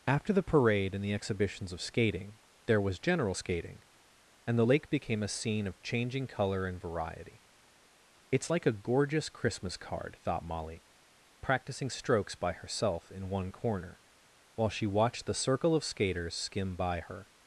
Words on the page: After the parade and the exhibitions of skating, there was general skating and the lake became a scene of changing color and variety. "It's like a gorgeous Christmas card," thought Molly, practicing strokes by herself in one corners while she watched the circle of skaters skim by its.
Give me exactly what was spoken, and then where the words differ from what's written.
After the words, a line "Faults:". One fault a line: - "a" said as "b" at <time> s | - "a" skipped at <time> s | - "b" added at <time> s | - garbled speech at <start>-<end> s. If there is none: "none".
After the parade and the exhibitions of skating, there was general skating and the lake became a scene of changing color and variety. "It's like a gorgeous Christmas card," thought Molly, practicing strokes by herself in one corner while she watched the circle of skaters skim by her.
Faults:
- "corners" said as "corner" at 13.5 s
- "its" said as "her" at 17.0 s